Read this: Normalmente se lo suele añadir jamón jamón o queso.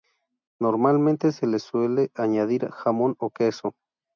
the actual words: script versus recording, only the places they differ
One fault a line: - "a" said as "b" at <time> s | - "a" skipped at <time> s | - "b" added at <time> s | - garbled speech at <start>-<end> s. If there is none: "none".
- "lo" said as "le" at 1.4 s
- "jamón" skipped at 3.2 s